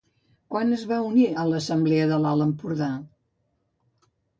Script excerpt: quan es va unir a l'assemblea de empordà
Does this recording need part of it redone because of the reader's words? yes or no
yes